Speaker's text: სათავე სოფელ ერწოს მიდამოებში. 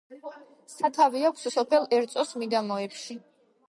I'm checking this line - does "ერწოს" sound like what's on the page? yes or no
yes